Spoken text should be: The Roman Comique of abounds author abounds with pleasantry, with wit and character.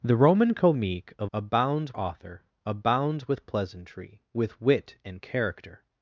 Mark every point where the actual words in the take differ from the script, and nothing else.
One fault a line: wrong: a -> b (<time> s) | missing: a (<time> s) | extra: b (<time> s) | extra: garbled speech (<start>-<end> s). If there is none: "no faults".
no faults